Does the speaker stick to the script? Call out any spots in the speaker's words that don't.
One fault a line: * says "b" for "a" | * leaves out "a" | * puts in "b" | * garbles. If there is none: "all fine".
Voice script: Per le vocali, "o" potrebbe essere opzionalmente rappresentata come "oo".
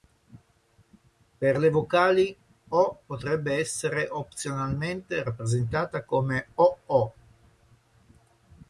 all fine